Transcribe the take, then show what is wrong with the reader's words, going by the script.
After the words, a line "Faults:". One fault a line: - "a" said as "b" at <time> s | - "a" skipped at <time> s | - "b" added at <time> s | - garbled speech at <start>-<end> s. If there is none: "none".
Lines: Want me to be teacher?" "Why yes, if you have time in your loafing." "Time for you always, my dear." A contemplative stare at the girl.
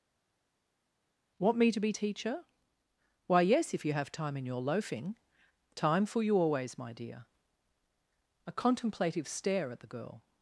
Want me to be teacher?" "Why yes, if you have time in your loafing." "Time for you always, my dear." A contemplative stare at the girl.
Faults:
none